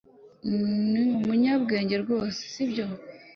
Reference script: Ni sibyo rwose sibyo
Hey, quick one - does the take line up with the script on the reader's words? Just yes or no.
no